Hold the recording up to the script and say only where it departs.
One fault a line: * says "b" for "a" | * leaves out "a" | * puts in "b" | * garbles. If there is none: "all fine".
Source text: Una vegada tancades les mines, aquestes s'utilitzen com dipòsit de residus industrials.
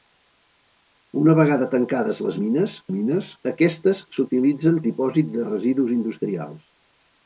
* puts in "mines"
* leaves out "com"